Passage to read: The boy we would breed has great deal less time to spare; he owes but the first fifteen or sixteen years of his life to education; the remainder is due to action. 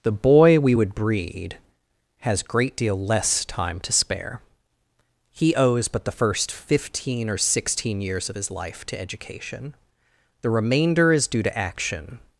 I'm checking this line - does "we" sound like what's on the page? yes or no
yes